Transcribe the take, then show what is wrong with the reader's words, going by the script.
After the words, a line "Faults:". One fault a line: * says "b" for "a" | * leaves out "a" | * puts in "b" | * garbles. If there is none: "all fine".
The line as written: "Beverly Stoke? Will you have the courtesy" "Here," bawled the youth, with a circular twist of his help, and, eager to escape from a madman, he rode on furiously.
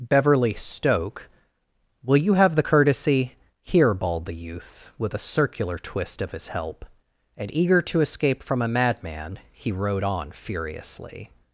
"Beverly Stoke? Will you have the courtesy" "Here," bawled the youth, with a circular twist of his help, and, eager to escape from a madman, he rode on furiously.
Faults:
all fine